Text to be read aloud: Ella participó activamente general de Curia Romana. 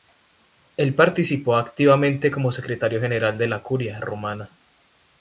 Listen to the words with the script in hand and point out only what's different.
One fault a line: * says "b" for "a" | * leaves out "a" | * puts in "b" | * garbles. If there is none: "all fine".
* says "Él" for "Ella"
* puts in "como secretario"
* puts in "la"